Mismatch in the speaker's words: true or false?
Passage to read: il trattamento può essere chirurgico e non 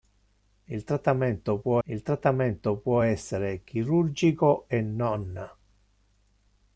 true